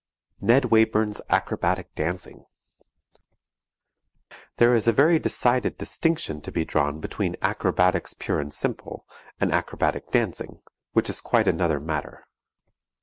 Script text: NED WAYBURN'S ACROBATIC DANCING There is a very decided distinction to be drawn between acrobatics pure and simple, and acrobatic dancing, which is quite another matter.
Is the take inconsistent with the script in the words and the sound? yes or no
no